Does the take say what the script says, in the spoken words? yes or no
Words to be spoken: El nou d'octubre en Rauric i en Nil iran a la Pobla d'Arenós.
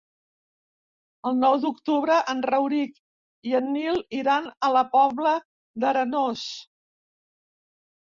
yes